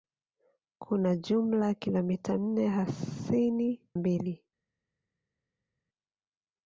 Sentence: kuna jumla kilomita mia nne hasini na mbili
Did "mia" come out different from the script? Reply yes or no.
yes